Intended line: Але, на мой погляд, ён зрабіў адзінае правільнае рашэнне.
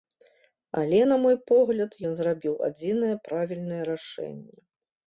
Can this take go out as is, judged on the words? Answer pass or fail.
pass